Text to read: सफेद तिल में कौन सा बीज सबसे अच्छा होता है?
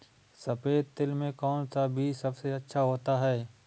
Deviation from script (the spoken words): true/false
false